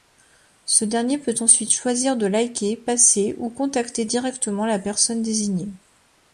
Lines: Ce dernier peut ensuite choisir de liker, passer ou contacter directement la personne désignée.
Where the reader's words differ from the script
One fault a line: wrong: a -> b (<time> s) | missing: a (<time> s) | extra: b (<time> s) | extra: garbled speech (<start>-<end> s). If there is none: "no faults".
no faults